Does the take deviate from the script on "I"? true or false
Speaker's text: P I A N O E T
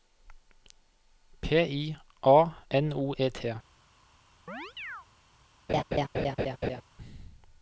false